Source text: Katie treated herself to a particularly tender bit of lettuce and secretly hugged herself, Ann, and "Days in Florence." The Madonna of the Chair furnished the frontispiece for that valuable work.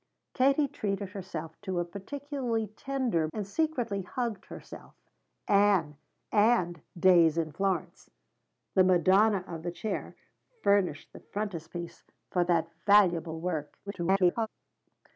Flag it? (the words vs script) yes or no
yes